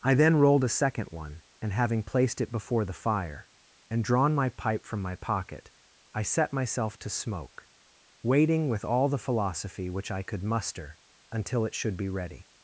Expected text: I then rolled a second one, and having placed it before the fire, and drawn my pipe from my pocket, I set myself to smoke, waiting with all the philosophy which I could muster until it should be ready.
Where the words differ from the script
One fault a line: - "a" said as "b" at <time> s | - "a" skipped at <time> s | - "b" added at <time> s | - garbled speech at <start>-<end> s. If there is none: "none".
none